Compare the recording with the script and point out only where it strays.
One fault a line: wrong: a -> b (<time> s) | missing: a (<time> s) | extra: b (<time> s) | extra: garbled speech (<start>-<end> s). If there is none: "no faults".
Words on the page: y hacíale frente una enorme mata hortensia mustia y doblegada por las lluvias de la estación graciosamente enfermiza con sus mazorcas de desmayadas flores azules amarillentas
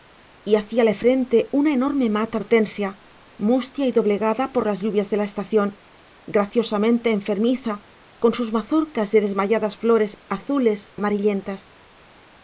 no faults